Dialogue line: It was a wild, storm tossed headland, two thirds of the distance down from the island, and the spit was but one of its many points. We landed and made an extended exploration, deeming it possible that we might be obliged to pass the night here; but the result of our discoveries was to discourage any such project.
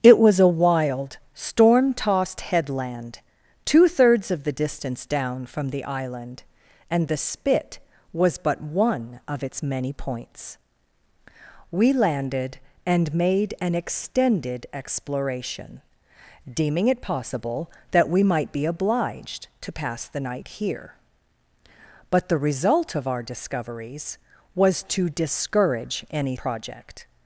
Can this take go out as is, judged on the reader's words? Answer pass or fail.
fail